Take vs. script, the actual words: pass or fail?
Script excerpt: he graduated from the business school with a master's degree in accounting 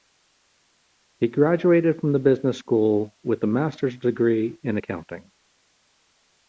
pass